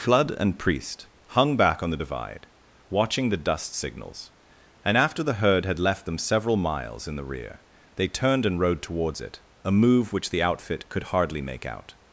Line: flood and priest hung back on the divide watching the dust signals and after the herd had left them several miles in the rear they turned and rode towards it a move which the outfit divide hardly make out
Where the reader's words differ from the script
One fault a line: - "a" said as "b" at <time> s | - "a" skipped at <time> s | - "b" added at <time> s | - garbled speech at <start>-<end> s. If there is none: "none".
- "divide" said as "could" at 10.9 s